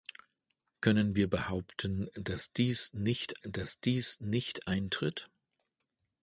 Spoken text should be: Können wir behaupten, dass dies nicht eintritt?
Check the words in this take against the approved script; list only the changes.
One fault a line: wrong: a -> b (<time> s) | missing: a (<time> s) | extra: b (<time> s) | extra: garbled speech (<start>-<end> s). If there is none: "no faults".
extra: dass dies nicht (3.4 s)